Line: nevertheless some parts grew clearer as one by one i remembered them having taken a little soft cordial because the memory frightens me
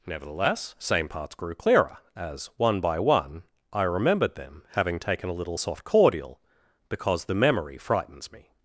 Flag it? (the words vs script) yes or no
yes